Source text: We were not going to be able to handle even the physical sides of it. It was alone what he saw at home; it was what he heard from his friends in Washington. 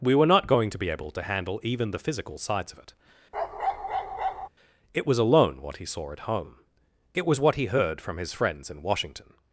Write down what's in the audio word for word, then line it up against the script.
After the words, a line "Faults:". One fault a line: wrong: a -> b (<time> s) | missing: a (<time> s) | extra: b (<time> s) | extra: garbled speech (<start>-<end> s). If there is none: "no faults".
We were not going to be able to handle even the physical sides of it. It was alone what he saw at home; it was what he heard from his friends in Washington.
Faults:
no faults